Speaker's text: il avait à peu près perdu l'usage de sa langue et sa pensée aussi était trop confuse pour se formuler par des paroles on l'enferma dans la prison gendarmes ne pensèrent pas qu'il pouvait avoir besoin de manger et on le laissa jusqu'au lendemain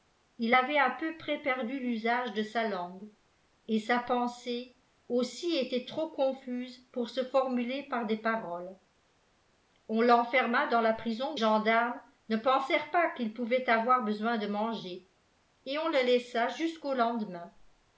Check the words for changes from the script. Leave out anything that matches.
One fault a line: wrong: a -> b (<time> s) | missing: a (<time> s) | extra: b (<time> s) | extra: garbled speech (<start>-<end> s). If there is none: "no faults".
no faults